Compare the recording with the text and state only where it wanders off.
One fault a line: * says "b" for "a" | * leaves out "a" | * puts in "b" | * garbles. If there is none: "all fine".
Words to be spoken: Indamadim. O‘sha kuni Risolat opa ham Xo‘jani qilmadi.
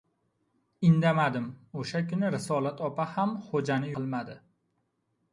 all fine